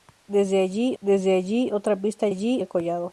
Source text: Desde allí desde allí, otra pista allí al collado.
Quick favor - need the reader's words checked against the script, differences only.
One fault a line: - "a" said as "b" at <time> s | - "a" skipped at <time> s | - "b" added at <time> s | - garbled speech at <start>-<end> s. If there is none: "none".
none